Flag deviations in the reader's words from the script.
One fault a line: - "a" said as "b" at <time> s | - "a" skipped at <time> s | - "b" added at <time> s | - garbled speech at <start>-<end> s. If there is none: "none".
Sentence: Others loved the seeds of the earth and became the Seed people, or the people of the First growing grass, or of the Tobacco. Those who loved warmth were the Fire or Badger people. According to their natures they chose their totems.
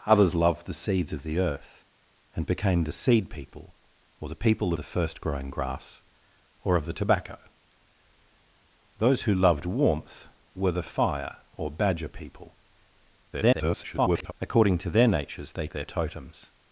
- "of" skipped at 4.7 s
- garbled speech at 13.3-14.3 s
- "chose" skipped at 15.7 s